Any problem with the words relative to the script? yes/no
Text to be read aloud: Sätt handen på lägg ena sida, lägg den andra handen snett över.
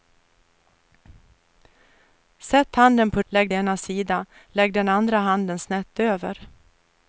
no